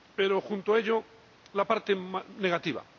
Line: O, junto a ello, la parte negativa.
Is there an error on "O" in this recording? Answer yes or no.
yes